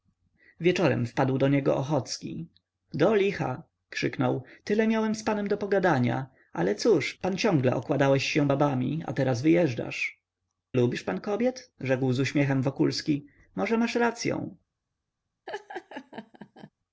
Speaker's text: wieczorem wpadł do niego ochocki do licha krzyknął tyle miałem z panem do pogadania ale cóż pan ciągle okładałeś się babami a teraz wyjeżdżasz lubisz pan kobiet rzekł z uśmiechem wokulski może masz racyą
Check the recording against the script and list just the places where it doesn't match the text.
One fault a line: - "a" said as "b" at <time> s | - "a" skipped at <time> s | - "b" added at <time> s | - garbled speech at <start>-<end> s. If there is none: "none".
none